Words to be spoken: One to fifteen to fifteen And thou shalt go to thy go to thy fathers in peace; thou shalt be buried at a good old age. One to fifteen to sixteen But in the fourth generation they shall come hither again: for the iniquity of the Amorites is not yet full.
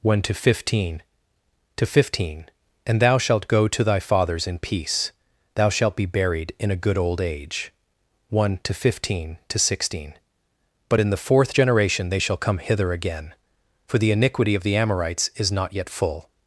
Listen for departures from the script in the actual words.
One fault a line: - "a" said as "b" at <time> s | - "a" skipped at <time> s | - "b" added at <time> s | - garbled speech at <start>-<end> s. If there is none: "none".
- "go to thy" skipped at 4.0 s
- "at" said as "in" at 6.6 s